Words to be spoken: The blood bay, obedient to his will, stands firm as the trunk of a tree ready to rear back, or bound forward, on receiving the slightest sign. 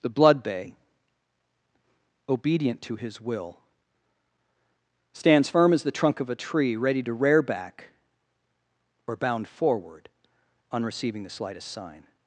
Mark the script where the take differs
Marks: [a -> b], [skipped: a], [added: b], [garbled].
The blood bay, obedient to his will, stands firm as the trunk of a tree ready to rear back, or bound forward, on receiving the slightest sign.